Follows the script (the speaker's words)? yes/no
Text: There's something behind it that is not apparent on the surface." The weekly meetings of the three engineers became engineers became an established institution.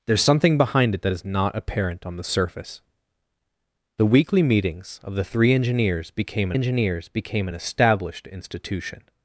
yes